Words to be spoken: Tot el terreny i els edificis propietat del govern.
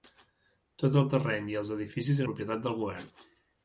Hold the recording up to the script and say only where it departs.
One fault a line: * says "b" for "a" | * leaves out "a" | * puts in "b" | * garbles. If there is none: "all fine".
all fine